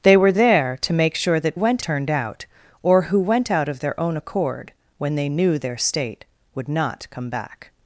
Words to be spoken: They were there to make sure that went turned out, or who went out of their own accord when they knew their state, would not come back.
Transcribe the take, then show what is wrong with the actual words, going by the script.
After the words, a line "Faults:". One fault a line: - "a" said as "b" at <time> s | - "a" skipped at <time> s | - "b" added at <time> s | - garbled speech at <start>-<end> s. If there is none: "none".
They were there to make sure that went turned out, or who went out of their own accord when they knew their state, would not come back.
Faults:
none